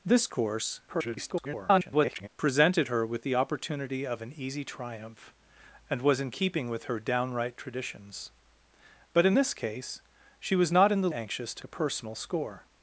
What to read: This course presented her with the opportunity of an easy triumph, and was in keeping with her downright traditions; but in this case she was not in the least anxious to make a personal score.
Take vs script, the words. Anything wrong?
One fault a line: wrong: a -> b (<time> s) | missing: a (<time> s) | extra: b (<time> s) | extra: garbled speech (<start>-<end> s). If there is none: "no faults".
extra: garbled speech (0.9-2.3 s)
missing: least (11.1 s)
missing: make (11.6 s)